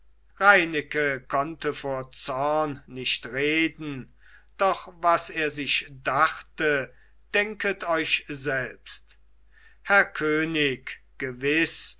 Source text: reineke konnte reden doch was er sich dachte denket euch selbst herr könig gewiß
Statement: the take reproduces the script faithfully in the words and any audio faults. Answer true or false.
false